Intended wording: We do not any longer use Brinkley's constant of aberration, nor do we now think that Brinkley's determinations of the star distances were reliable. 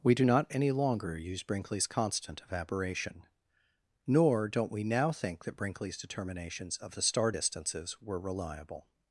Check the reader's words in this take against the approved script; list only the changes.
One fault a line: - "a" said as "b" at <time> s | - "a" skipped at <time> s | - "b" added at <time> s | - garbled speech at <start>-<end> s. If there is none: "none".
- "do" said as "don't" at 4.5 s